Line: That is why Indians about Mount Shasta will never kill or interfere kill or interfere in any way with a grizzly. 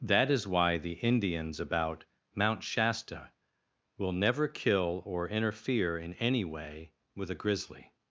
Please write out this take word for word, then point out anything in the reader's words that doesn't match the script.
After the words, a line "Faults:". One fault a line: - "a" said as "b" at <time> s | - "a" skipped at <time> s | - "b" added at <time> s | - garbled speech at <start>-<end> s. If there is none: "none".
That is why the Indians about Mount Shasta will never kill or interfere in any way with a grizzly.
Faults:
- "the" added at 0.8 s
- "kill or interfere" skipped at 6.0 s